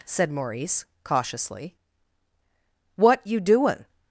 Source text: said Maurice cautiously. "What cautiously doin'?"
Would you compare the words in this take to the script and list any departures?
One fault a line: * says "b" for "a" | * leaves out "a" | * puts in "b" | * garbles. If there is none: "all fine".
* says "you" for "cautiously"